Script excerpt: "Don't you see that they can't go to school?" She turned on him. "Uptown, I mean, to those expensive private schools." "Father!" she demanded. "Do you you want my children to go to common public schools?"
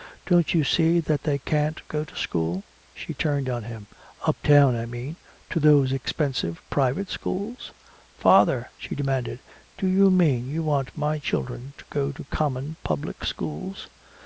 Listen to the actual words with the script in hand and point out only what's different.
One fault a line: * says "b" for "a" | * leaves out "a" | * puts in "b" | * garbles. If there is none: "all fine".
* puts in "mean"